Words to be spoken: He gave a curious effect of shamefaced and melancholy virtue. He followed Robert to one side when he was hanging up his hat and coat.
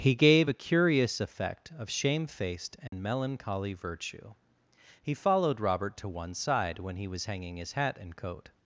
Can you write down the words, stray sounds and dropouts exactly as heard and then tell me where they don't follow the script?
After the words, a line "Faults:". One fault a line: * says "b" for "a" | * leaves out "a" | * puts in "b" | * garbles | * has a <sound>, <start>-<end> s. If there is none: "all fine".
He gave a curious effect of shamefaced and melancholy virtue. He followed Robert to one side when he was hanging his hat and coat.
Faults:
* has a dropout, 2.9-2.9 s
* leaves out "up"